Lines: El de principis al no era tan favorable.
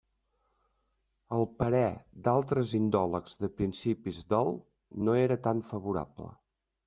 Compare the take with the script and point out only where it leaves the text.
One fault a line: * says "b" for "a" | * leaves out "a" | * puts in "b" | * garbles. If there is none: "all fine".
* puts in "parer d'altres indòlegs"
* says "del" for "al"